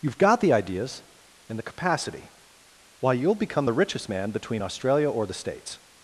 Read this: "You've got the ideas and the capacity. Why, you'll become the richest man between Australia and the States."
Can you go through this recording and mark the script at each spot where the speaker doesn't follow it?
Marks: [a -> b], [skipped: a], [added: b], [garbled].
"You've got the ideas and the capacity. Why, you'll become the richest man between Australia [and -> or] the States."